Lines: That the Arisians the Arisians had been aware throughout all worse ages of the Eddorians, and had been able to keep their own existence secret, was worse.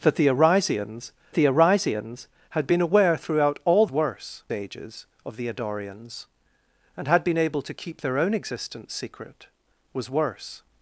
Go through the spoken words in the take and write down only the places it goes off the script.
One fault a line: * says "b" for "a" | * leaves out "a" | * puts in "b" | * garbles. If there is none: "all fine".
all fine